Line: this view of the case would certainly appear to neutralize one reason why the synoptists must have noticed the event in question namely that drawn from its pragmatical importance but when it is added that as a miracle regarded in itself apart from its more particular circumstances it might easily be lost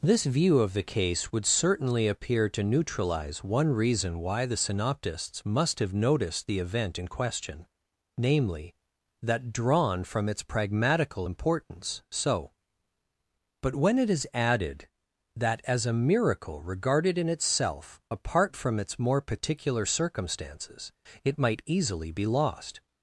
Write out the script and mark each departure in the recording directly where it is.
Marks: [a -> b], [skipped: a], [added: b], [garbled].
this view of the case would certainly appear to neutralize one reason why the synoptists must have noticed the event in question namely that drawn from its pragmatical importance [added: so] but when it is added that as a miracle regarded in itself apart from its more particular circumstances it might easily be lost